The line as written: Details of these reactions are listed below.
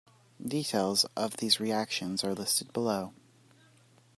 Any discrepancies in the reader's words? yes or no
no